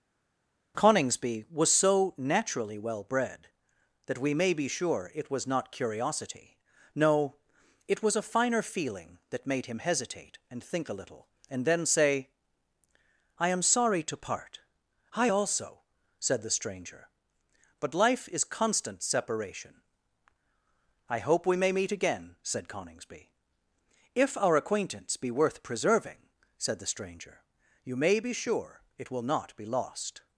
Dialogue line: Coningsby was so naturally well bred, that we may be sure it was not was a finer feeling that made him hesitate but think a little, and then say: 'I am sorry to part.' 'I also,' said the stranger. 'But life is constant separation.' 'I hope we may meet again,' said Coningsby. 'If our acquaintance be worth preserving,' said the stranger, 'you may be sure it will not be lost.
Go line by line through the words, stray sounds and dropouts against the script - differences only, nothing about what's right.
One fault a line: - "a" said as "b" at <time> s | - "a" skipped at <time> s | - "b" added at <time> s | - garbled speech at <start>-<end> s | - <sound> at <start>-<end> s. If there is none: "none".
- "curiosity no it" added at 5.7 s
- "but" said as "and" at 10.5 s